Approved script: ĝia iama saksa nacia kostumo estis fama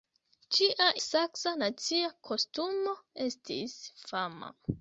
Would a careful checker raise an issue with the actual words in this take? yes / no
yes